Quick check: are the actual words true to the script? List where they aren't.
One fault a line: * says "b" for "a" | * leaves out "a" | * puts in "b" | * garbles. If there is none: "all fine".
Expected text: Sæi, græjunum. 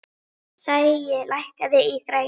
* puts in "lækkaðu í"